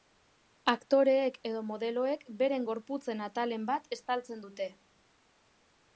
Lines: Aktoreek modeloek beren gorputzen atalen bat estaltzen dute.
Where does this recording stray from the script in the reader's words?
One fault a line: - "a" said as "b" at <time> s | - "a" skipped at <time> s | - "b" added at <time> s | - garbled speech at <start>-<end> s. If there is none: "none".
- "edo" added at 1.5 s